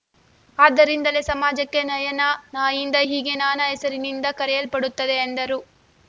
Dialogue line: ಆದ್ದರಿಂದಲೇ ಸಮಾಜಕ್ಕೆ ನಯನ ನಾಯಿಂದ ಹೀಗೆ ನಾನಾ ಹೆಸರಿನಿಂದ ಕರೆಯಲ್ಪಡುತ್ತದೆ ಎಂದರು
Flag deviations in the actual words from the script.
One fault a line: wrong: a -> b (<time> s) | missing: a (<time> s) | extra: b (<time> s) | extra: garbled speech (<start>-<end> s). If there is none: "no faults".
no faults